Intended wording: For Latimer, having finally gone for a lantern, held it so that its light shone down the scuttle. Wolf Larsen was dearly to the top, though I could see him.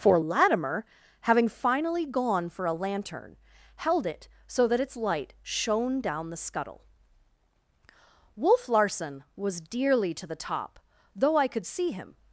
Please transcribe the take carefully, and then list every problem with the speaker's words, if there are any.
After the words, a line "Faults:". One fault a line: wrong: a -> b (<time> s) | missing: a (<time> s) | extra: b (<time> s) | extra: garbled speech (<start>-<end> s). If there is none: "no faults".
For Latimer, having finally gone for a lantern, held it so that its light shone down the scuttle. Wolf Larsen was dearly to the top, though I could see him.
Faults:
no faults